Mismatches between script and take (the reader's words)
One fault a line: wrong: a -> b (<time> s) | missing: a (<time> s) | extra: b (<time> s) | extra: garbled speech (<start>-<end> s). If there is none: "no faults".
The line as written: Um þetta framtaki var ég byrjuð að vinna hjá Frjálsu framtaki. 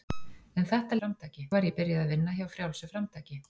no faults